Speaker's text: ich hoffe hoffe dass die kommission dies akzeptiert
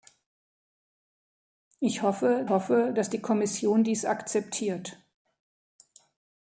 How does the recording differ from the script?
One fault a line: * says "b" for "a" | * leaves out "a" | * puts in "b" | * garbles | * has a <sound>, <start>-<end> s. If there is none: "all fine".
all fine